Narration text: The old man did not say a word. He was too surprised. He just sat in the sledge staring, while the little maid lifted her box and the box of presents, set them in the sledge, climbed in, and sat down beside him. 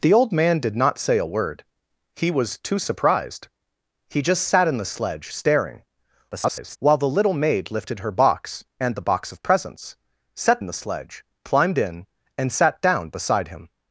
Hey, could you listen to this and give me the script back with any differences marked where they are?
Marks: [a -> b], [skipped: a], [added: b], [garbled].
The old man did not say a word. He was too surprised. He just sat in the sledge staring, [garbled] while the little maid lifted her box and the box of presents, set [skipped: them] in the sledge, climbed in, and sat down beside him.